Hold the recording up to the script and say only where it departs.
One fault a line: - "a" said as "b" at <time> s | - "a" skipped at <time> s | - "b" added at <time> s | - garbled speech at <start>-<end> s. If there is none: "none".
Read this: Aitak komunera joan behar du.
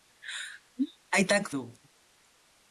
- "komunera joan behar" skipped at 1.5 s